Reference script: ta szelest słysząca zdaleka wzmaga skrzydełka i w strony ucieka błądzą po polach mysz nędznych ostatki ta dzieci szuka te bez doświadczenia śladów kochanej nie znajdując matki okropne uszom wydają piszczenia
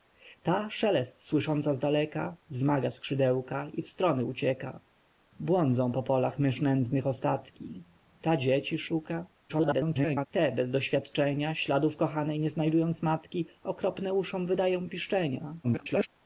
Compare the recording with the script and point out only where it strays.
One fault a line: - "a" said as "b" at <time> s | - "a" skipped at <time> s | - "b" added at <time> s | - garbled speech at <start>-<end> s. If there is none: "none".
- garbled speech at 9.5-10.3 s
- garbled speech at 15.6-16.1 s